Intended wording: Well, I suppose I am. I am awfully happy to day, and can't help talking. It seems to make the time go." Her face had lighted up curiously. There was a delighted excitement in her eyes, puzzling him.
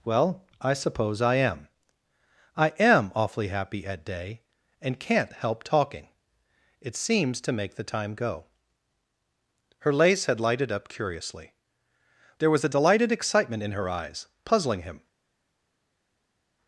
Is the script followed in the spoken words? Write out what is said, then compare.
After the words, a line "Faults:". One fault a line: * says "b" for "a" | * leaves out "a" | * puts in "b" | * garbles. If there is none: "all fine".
Well, I suppose I am. I am awfully happy at day, and can't help talking. It seems to make the time go." Her lace had lighted up curiously. There was a delighted excitement in her eyes, puzzling him.
Faults:
* says "at" for "to"
* says "lace" for "face"